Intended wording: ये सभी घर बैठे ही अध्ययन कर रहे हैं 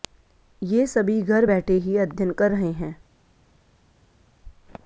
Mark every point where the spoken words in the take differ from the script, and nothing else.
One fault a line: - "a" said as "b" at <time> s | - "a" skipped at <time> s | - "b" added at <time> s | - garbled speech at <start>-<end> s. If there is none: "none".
none